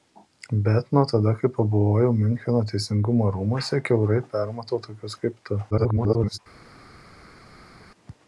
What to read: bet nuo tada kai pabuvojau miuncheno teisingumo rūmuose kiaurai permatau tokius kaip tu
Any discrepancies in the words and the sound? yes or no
yes